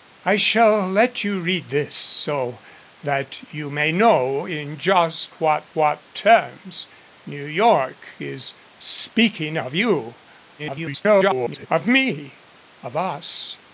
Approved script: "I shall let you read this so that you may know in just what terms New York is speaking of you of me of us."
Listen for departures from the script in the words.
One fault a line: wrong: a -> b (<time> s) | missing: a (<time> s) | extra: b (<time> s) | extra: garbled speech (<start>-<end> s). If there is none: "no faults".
extra: what (5.7 s)
extra: garbled speech (10.6-11.7 s)